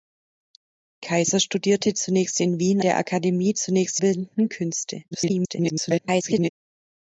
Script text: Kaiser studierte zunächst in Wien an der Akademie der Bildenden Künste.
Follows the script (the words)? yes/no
no